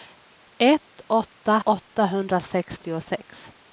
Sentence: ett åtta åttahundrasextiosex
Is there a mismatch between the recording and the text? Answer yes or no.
no